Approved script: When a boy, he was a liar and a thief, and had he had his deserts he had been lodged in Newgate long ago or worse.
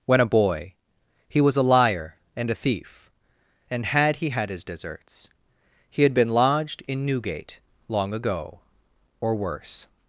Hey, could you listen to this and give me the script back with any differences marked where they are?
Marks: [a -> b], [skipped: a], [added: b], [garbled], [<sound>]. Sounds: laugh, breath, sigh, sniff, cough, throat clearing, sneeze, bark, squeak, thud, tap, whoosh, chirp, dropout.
When a boy, he was a liar and a thief, and had he had his deserts he had been lodged in Newgate long ago or worse.